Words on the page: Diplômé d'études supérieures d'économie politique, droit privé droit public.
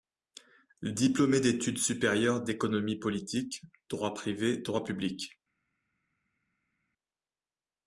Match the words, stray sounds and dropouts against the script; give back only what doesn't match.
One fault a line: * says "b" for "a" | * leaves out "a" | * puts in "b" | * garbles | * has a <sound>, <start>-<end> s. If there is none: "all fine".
all fine